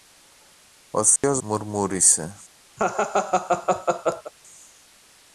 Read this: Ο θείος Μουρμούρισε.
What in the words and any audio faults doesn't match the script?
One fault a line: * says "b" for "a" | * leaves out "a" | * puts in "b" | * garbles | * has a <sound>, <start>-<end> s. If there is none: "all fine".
* has a dropout, 1.2-1.2 s
* has a laugh, 2.8-4.3 s